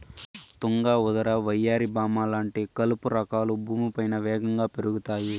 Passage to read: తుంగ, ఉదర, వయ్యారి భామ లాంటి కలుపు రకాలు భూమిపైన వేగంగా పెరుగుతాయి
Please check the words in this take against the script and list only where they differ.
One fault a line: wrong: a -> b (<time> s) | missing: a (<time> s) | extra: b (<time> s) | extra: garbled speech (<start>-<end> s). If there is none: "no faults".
no faults